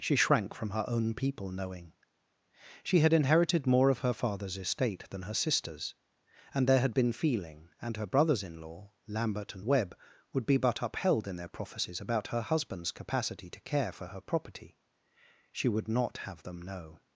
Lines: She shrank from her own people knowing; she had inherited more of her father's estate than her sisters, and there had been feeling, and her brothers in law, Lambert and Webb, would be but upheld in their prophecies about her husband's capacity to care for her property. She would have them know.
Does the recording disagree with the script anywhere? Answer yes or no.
yes